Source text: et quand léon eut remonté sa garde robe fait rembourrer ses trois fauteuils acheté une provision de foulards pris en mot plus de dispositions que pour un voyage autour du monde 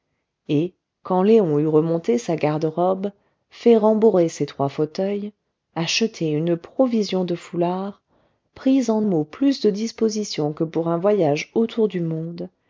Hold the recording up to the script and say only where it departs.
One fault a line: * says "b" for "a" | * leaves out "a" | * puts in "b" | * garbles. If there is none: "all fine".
all fine